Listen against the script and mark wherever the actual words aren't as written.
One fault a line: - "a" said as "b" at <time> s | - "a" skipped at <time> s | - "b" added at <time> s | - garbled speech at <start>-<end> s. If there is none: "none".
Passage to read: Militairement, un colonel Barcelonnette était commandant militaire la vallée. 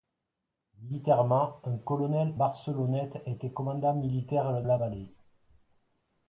none